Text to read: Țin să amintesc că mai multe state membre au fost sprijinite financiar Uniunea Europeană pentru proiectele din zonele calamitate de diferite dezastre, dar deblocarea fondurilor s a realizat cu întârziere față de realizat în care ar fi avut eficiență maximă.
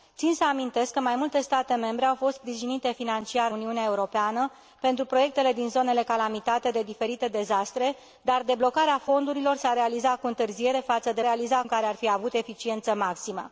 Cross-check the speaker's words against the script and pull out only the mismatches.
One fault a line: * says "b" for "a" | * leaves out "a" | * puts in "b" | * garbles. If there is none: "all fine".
all fine